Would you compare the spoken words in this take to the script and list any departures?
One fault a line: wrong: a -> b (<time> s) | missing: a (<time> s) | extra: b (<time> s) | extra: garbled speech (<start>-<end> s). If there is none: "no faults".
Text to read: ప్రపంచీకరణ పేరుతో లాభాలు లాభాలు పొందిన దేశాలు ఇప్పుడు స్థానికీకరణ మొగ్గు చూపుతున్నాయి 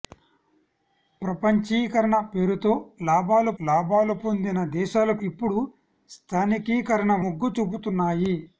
no faults